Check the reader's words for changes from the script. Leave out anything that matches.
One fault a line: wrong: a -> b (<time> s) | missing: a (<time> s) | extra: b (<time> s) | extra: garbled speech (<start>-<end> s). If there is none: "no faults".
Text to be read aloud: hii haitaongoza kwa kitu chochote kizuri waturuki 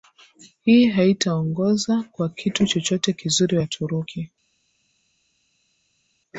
no faults